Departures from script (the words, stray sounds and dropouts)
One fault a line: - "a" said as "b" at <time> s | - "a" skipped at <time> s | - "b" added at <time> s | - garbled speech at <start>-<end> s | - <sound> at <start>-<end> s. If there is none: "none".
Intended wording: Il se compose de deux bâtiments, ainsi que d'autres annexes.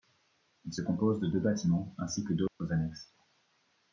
- dropout at 2.5-2.6 s